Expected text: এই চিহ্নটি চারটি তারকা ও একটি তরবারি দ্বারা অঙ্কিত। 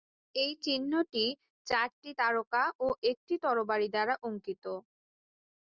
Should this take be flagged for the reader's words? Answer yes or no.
no